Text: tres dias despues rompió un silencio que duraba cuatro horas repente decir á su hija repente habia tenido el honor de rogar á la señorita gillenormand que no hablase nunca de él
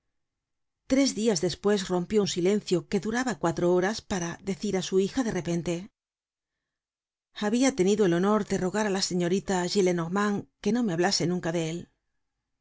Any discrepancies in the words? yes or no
yes